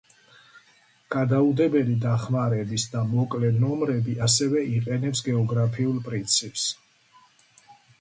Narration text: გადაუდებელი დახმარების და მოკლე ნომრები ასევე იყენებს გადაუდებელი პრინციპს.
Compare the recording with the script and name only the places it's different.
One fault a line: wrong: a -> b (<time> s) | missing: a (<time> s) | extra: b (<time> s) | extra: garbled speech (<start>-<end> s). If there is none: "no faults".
wrong: გადაუდებელი -> გეოგრაფიულ (5.3 s)